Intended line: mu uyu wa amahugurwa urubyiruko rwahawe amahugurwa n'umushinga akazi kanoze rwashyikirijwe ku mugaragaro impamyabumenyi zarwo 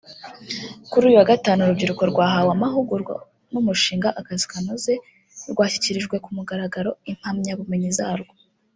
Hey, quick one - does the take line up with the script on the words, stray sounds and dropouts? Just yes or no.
no